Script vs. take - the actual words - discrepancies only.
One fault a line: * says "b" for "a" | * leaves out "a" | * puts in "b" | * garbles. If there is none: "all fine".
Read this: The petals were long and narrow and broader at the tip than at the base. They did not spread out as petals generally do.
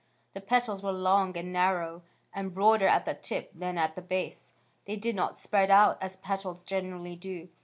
all fine